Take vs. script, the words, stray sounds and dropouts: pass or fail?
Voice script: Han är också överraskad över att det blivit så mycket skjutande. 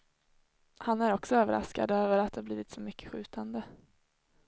pass